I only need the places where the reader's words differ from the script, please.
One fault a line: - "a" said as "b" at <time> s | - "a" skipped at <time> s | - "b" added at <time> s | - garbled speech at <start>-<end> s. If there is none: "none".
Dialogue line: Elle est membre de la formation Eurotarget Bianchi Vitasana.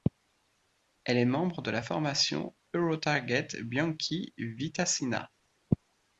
none